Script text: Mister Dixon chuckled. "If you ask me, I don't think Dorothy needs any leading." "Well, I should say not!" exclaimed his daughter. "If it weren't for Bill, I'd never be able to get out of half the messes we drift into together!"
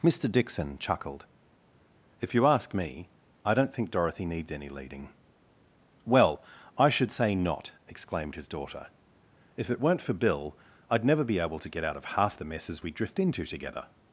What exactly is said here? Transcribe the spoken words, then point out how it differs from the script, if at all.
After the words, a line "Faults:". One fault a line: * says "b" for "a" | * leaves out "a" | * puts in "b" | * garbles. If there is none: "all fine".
Mister Dixon chuckled. "If you ask me, I don't think Dorothy needs any leading." "Well, I should say not!" exclaimed his daughter. "If it weren't for Bill, I'd never be able to get out of half the messes we drift into together!"
Faults:
all fine